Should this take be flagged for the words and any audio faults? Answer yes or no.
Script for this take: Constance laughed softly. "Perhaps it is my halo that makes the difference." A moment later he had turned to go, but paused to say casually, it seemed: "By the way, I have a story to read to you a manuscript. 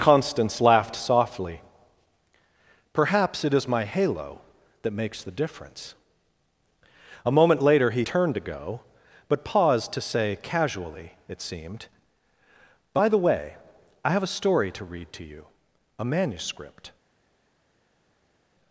yes